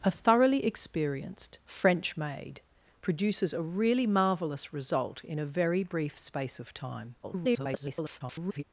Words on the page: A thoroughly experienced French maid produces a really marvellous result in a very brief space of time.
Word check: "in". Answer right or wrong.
right